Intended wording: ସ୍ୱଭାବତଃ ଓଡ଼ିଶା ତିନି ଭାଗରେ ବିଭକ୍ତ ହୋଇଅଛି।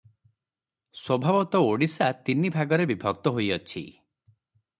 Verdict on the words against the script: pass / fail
pass